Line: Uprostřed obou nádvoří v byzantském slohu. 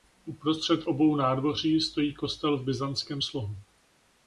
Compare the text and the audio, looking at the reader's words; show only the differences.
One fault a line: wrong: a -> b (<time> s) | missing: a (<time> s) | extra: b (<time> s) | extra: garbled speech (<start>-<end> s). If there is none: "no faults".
extra: stojí kostel (1.8 s)